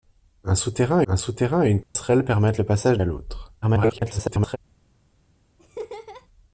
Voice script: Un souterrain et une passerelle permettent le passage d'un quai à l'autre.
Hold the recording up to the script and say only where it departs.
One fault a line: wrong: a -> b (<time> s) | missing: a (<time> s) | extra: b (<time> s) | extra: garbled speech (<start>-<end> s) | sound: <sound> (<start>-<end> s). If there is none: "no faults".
extra: un souterrain (1.1 s)
sound: dropout (1.8-2.0 s)
missing: d'un quai (3.0 s)
extra: garbled speech (3.6-4.6 s)
sound: laugh (5.6-6.3 s)